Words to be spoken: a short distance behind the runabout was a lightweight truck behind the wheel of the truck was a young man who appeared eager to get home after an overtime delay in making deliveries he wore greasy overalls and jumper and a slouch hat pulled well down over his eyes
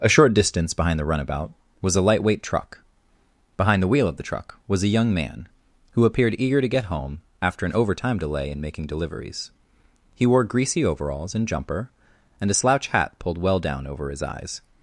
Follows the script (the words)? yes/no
yes